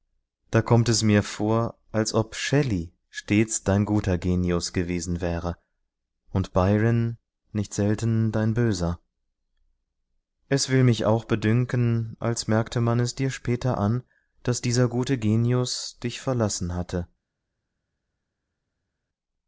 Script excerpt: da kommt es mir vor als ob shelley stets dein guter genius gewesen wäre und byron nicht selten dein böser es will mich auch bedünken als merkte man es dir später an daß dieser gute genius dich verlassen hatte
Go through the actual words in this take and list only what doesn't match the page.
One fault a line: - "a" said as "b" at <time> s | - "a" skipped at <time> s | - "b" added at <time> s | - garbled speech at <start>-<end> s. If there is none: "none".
none